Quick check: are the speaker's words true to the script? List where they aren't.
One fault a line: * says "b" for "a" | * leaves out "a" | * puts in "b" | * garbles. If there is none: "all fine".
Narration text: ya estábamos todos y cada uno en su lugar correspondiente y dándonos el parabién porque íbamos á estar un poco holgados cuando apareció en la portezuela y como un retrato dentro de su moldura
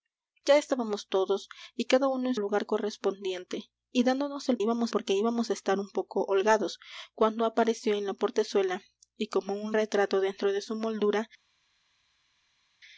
* leaves out "su"
* says "íbamos" for "parabién"